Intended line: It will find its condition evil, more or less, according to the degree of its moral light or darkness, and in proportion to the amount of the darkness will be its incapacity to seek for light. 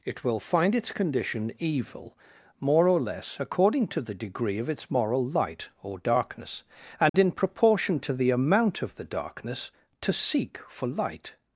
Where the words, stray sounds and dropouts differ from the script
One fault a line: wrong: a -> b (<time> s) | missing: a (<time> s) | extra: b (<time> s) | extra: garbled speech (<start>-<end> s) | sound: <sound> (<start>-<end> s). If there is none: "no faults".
sound: dropout (7.1-7.1 s)
missing: will be its incapacity (9.7 s)